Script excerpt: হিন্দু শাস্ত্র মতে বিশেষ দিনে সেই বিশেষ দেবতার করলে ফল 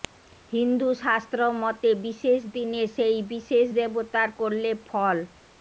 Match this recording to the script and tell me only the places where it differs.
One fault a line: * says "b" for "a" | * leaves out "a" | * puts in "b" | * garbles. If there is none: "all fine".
all fine